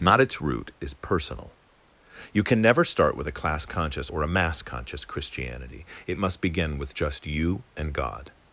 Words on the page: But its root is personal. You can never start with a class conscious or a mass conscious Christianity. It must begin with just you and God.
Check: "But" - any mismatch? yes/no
yes